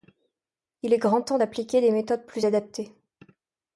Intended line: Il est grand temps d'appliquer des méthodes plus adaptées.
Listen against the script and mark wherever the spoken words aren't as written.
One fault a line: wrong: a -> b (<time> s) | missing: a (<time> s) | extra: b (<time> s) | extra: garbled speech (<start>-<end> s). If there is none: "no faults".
no faults